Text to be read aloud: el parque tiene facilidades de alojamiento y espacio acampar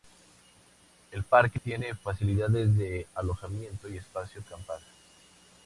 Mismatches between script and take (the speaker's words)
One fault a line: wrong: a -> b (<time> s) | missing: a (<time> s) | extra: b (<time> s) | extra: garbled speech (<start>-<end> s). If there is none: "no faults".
no faults